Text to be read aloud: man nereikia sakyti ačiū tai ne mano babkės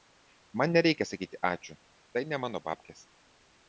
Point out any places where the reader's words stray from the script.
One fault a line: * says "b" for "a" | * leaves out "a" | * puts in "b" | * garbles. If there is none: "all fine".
all fine